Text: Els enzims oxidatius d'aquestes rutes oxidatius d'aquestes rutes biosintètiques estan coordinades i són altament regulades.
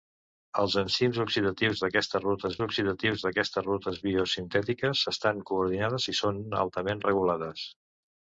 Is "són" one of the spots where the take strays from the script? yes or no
no